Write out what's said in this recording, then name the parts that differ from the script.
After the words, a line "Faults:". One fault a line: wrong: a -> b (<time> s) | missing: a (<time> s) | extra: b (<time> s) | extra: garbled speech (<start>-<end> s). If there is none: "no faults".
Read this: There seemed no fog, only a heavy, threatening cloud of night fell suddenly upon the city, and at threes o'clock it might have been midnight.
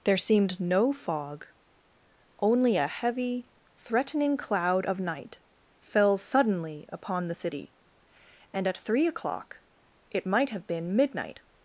There seemed no fog, only a heavy, threatening cloud of night fell suddenly upon the city, and at three o'clock it might have been midnight.
Faults:
wrong: threes -> three (8.8 s)